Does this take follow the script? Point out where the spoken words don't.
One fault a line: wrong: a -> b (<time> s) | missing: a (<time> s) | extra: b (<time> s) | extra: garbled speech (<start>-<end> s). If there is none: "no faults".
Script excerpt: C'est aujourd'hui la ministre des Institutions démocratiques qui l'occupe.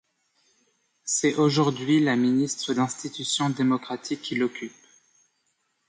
missing: des (2.7 s)